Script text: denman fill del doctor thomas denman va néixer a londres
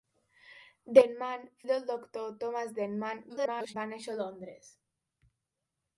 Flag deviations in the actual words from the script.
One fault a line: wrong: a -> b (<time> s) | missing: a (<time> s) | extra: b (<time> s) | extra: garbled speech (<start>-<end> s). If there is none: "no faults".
missing: fill (1.4 s)
extra: garbled speech (3.3-3.7 s)